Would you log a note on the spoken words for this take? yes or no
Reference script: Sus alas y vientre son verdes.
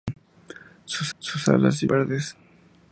yes